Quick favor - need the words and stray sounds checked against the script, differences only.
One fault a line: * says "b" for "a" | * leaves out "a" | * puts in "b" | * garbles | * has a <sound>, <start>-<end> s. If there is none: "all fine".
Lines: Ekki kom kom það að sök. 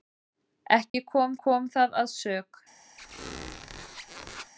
* has a dropout, 0.9-0.9 s
* has a squeak, 3.0-4.5 s